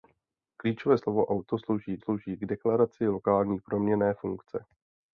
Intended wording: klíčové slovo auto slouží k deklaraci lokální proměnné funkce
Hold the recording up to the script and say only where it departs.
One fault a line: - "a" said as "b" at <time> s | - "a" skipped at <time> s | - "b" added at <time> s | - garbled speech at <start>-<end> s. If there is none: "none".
- "slouží" added at 2.0 s